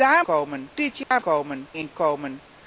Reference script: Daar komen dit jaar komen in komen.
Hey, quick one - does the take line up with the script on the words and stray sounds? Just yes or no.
no